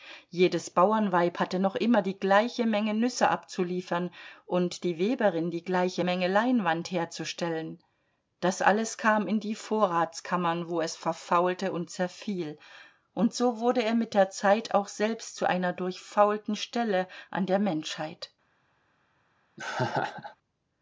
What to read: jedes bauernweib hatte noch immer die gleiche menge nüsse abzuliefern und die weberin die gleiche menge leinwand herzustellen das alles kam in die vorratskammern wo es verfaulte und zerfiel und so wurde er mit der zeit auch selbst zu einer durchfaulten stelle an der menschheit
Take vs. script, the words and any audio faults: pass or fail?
fail